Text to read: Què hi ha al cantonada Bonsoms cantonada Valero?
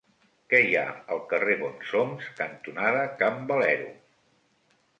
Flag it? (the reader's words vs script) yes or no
yes